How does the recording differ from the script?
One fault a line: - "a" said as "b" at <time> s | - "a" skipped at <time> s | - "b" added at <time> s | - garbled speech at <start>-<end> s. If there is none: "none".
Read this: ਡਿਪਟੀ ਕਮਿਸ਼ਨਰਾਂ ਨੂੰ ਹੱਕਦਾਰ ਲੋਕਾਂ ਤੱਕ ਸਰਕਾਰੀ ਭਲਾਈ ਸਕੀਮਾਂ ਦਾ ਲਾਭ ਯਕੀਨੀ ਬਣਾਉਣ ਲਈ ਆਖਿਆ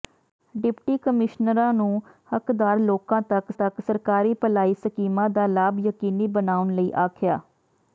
- "ਤੱਕ" added at 3.5 s